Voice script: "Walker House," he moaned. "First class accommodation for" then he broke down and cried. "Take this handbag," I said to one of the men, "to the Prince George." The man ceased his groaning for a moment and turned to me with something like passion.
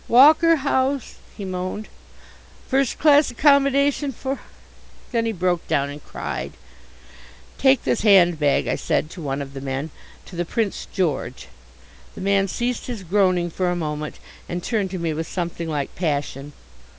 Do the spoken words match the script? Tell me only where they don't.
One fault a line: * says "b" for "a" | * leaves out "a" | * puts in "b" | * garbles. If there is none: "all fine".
all fine